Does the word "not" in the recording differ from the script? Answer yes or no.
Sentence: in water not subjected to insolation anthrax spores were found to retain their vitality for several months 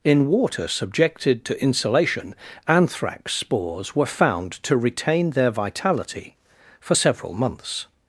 yes